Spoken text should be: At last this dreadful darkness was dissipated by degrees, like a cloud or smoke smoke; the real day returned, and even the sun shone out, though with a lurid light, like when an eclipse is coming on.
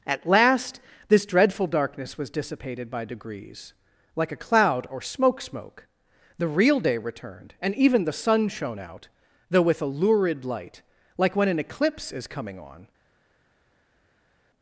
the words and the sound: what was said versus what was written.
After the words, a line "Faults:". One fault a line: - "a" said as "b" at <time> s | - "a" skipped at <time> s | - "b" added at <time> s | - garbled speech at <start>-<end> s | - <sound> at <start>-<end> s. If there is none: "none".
At last this dreadful darkness was dissipated by degrees, like a cloud or smoke smoke; the real day returned, and even the sun shone out, though with a lurid light, like when an eclipse is coming on.
Faults:
none